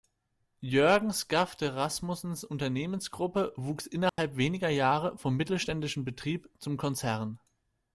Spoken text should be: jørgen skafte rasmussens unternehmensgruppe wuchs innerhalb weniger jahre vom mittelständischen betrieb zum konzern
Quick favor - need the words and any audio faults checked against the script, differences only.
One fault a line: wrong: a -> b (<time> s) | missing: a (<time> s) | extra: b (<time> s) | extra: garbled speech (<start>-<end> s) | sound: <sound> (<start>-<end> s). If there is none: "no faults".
sound: dropout (4.1-4.2 s)